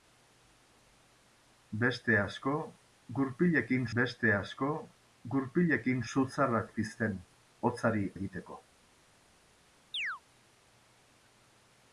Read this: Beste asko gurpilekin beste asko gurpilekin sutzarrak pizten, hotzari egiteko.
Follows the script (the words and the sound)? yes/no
no